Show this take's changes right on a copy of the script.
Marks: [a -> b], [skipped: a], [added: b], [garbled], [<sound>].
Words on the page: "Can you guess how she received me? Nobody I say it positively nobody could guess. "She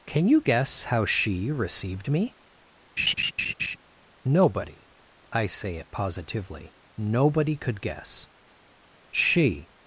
"Can you guess how she received me? [laugh] Nobody I say it positively nobody could guess. "She